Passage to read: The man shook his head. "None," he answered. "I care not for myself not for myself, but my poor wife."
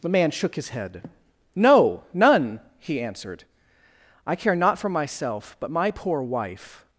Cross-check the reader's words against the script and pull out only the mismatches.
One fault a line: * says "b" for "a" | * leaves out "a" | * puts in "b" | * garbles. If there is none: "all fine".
* puts in "No"
* leaves out "not for myself"